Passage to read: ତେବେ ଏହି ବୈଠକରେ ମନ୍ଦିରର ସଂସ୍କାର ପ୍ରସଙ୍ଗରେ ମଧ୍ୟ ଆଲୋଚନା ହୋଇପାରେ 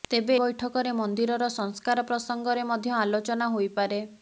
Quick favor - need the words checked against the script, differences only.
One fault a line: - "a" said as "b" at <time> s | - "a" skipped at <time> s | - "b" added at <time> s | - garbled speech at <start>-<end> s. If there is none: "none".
- "ଏହି" skipped at 0.3 s